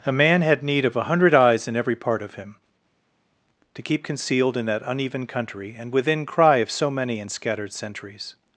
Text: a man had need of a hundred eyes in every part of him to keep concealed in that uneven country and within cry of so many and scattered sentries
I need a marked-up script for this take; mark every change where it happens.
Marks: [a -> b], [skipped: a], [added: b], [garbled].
a man had need of a hundred eyes in every part of him to keep concealed in that uneven country and within cry of so many and scattered sentries